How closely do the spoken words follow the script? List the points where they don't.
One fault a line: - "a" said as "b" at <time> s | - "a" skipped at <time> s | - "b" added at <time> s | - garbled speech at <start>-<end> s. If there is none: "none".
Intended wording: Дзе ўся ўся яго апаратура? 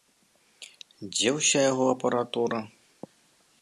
- "ўся" skipped at 1.6 s